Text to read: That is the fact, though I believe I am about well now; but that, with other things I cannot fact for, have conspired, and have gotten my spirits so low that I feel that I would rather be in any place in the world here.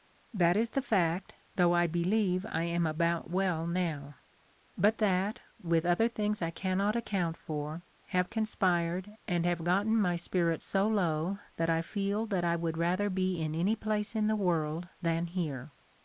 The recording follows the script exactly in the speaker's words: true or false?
false